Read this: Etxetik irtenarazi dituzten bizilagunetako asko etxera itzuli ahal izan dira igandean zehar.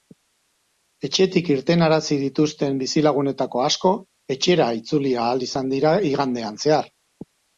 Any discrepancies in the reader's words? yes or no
no